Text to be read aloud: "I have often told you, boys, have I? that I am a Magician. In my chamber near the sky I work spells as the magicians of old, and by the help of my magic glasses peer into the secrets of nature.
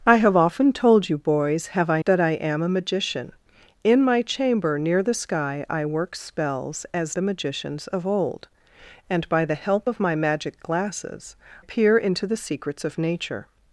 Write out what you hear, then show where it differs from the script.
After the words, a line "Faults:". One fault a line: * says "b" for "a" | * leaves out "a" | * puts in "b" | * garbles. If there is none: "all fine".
"I have often told you, boys, have I? that I am a Magician. In my chamber near the sky I work spells as the magicians of old, and by the help of my magic glasses peer into the secrets of nature.
Faults:
all fine